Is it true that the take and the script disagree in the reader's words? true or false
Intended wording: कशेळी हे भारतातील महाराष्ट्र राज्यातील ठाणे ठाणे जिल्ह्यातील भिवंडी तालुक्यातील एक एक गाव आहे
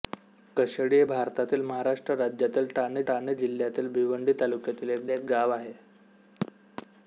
false